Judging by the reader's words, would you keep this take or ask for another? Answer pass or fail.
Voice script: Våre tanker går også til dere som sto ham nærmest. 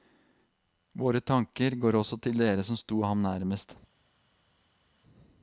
pass